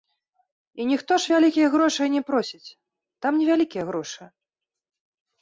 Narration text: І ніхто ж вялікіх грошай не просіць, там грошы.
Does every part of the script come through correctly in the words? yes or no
no